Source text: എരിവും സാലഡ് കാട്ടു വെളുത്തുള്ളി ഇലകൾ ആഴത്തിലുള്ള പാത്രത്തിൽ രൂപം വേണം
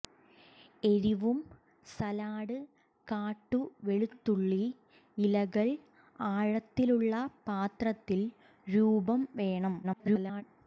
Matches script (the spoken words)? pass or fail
fail